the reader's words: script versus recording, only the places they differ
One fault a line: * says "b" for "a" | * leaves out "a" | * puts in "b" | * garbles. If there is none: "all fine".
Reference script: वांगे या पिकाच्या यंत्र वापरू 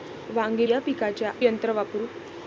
all fine